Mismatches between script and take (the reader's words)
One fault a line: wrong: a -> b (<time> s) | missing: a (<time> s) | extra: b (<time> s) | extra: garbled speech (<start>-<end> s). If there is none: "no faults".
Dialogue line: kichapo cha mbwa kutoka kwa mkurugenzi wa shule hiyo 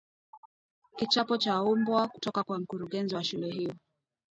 no faults